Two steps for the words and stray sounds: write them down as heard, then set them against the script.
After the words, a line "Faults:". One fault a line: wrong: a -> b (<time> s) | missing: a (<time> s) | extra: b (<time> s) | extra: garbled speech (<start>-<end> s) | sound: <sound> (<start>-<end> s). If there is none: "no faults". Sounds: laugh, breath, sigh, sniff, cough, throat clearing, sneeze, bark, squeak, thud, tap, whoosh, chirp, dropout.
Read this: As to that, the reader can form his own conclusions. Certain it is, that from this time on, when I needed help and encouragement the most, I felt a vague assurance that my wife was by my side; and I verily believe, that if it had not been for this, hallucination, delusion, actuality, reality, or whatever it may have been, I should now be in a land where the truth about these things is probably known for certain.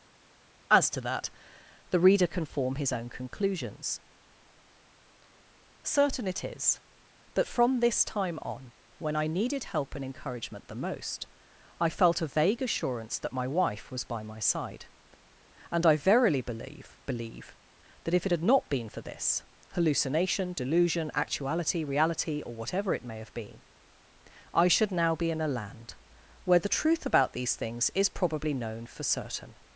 As to that, the reader can form his own conclusions. Certain it is, that from this time on, when I needed help and encouragement the most, I felt a vague assurance that my wife was by my side; and I verily believe believe, that if it had not been for this, hallucination, delusion, actuality, reality, or whatever it may have been, I should now be in a land where the truth about these things is probably known for certain.
Faults:
extra: believe (17.1 s)